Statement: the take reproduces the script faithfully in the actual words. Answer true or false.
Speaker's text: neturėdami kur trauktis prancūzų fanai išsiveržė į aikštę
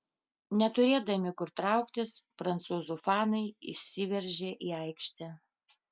true